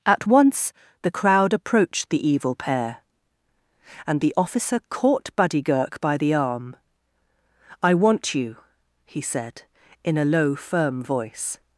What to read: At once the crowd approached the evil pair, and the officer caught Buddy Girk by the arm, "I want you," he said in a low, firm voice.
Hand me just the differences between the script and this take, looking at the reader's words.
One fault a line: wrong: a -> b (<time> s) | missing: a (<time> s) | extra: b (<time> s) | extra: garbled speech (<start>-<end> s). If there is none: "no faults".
no faults